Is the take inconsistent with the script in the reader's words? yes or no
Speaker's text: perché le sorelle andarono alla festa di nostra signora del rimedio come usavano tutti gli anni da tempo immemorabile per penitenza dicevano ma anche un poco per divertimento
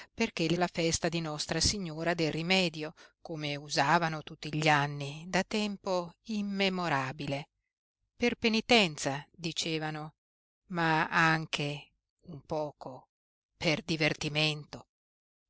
yes